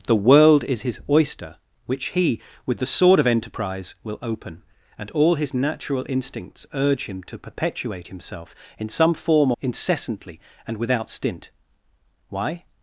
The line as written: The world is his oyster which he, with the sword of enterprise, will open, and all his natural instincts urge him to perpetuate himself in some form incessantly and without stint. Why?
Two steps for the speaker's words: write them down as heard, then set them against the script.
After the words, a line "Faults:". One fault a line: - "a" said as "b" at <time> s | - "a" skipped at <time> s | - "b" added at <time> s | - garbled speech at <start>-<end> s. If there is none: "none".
The world is his oyster which he, with the sword of enterprise, will open, and all his natural instincts urge him to perpetuate himself in some form incessantly and without stint. Why?
Faults:
none